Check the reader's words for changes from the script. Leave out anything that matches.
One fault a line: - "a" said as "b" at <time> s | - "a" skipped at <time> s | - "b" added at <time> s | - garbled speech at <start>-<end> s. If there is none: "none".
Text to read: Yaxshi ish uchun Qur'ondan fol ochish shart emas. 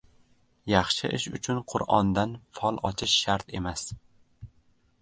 none